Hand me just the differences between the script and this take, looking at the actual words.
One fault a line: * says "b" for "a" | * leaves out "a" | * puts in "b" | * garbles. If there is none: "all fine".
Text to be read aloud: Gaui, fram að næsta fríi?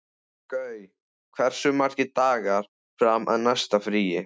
* puts in "hversu margir dagar"